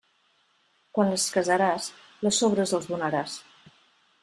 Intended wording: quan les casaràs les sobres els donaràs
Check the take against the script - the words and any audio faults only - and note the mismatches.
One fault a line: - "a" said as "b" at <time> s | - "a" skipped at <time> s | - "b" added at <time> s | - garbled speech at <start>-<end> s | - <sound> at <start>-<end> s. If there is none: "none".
none